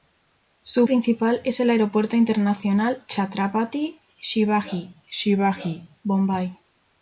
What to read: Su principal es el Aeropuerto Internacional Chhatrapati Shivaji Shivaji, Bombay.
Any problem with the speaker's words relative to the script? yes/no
no